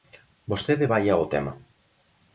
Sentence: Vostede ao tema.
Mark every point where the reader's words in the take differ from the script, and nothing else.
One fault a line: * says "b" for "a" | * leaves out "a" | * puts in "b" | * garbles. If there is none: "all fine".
* puts in "vaia"